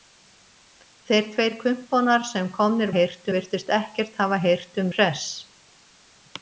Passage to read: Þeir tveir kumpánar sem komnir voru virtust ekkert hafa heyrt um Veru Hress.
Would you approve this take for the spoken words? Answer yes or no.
no